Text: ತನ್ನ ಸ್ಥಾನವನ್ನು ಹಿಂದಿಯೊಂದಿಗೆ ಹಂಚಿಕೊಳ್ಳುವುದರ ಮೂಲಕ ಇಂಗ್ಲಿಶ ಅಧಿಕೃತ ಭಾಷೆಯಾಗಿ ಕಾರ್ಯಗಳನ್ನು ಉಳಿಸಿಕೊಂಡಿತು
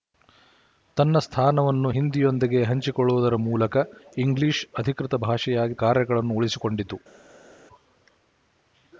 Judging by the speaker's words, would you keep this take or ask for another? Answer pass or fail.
pass